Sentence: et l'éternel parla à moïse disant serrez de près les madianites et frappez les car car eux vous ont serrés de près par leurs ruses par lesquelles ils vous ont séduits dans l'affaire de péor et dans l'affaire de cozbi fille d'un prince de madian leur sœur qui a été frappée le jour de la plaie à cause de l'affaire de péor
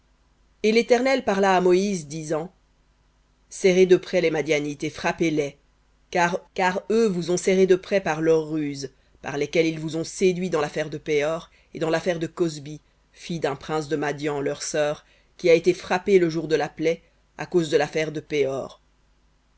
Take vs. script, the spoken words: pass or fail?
pass